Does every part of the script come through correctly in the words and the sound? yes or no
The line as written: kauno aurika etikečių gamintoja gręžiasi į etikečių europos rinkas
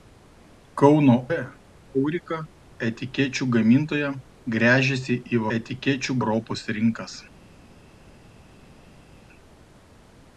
yes